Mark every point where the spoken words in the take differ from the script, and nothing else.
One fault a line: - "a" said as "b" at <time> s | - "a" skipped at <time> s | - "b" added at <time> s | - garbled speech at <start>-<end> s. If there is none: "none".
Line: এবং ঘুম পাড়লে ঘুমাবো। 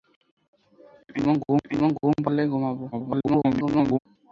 - "এবং ঘুম" added at 1.7 s
- garbled speech at 2.9-4.0 s